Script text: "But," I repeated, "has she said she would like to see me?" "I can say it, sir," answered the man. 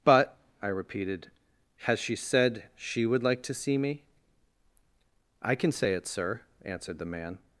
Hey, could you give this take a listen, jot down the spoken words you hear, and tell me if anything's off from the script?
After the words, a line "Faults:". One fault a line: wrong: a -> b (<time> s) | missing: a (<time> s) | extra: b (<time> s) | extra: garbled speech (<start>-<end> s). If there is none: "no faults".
"But," I repeated, "has she said she would like to see me?" "I can say it, sir," answered the man.
Faults:
no faults